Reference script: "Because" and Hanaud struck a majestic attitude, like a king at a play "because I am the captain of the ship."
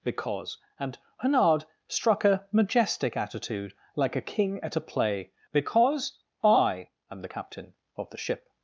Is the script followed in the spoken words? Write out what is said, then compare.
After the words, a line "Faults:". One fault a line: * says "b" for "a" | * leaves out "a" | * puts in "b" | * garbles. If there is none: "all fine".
"Because" and Hanaud struck a majestic attitude, like a king at a play "because I am the captain of the ship."
Faults:
all fine